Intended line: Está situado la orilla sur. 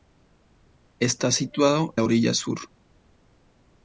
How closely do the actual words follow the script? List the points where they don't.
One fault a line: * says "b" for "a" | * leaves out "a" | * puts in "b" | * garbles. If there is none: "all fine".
all fine